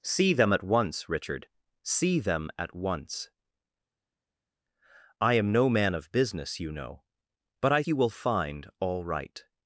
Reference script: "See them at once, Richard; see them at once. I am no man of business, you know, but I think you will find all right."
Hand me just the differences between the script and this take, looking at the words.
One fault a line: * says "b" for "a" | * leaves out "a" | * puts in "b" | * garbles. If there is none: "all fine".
* leaves out "think"